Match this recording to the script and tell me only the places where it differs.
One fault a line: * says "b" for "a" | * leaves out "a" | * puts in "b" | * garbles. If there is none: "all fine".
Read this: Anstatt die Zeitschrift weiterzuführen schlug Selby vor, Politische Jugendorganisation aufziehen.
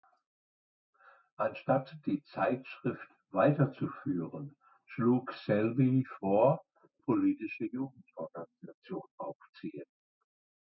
all fine